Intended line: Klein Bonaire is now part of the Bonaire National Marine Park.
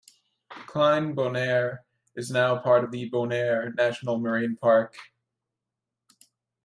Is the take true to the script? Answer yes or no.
yes